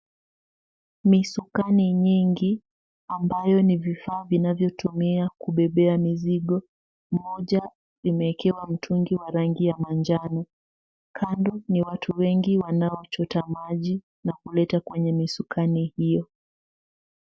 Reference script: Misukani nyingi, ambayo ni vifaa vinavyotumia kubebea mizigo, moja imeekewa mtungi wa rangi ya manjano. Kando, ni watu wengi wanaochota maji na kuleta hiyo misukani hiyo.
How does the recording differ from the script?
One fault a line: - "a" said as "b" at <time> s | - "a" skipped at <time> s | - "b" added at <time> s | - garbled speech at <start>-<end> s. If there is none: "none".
- "hiyo" said as "kwenye" at 14.8 s